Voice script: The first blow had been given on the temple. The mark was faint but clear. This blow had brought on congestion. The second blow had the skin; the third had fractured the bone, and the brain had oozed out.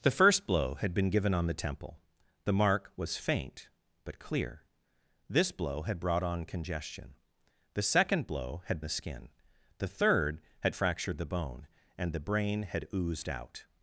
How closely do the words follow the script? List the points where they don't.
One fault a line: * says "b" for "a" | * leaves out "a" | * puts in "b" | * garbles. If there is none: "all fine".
all fine